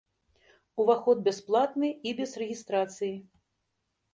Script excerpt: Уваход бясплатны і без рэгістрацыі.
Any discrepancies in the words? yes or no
no